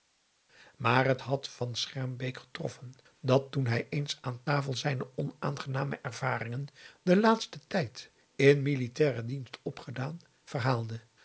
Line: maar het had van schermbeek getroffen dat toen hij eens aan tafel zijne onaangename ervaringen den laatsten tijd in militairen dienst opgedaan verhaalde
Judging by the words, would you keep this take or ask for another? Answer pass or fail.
pass